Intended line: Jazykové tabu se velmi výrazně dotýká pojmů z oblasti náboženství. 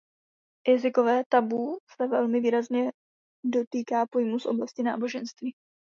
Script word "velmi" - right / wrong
right